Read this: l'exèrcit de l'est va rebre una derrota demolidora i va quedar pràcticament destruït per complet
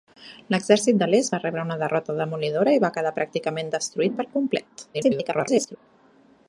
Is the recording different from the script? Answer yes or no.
yes